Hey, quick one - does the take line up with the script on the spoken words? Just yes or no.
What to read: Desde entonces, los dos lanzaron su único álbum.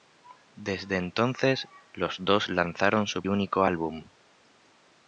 yes